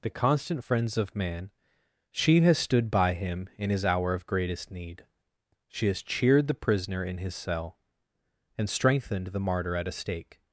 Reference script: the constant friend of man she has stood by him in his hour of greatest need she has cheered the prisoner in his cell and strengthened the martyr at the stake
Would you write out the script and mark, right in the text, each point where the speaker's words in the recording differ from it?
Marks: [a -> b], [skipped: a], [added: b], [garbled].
the constant [friend -> friends] of man she has stood by him in his hour of greatest need she has cheered the prisoner in his cell and strengthened the martyr at [the -> a] stake